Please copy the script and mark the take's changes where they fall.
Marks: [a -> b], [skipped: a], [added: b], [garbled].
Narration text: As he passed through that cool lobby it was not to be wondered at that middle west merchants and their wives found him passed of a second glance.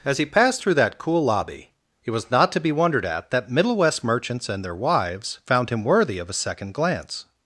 As he passed through that cool lobby it was not to be wondered at that middle west merchants and their wives found him [passed -> worthy] of a second glance.